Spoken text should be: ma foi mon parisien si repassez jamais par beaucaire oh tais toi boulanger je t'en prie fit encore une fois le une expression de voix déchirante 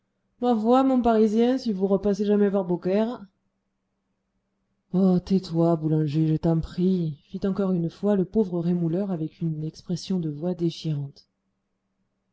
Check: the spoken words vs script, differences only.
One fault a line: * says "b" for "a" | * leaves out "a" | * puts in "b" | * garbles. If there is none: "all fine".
* puts in "vous"
* puts in "pauvre rémouleur avec"